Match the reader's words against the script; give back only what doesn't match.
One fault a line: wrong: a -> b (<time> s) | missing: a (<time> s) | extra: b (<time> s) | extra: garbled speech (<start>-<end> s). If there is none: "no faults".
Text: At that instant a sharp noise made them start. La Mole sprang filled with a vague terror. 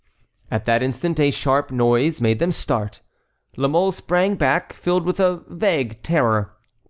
extra: back (4.3 s)